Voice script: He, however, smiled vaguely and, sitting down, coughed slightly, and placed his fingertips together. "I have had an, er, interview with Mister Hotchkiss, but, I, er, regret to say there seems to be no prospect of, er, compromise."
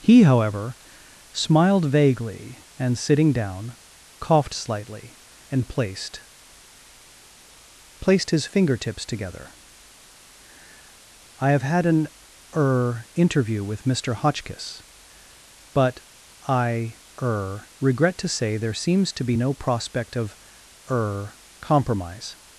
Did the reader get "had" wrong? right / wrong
right